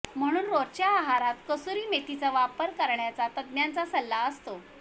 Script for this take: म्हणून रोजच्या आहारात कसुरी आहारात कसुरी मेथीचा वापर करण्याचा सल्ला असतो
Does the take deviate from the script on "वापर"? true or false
false